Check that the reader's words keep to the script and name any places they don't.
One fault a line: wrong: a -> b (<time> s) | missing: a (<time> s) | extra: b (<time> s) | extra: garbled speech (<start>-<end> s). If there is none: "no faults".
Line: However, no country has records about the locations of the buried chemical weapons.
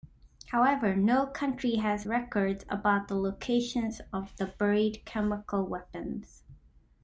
no faults